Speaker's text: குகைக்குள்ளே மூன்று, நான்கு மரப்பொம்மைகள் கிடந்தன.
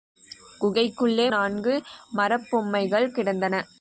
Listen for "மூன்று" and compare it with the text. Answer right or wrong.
wrong